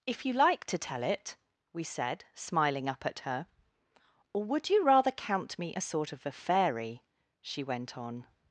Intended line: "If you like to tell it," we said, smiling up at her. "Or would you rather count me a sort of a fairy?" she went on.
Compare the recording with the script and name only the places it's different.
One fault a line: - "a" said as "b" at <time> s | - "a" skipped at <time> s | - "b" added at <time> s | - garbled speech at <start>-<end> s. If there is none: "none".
none